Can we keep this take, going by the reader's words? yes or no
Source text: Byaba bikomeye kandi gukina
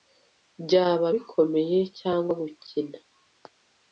no